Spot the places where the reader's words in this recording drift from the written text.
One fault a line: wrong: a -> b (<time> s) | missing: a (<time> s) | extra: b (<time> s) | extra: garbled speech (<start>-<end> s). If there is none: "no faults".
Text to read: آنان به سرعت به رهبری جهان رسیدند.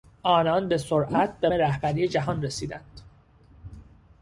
no faults